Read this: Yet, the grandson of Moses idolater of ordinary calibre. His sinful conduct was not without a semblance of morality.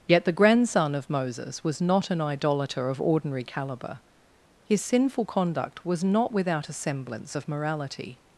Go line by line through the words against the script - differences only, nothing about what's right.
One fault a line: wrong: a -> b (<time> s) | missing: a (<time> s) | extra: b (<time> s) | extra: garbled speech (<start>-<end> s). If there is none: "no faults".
extra: was not an (1.6 s)